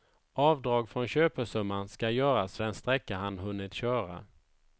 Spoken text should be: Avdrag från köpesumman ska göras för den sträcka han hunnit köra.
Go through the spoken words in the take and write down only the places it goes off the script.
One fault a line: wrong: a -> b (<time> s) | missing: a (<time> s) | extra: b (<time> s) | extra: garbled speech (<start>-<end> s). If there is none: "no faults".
missing: för (2.6 s)